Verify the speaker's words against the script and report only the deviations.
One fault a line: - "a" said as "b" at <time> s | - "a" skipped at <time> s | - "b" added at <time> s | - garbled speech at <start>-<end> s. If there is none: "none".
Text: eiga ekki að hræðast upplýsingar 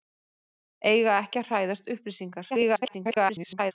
- garbled speech at 2.5-3.7 s